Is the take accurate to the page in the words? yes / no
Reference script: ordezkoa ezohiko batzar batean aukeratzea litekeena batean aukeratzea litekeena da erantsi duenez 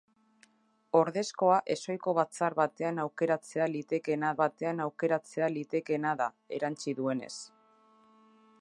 yes